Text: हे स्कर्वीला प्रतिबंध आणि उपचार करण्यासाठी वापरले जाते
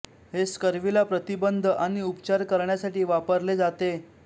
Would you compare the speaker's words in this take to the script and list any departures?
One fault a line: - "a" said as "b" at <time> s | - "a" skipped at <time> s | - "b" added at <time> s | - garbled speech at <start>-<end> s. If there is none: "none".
none